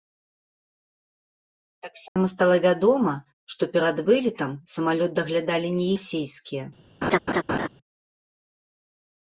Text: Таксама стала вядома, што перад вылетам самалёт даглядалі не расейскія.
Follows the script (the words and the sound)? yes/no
no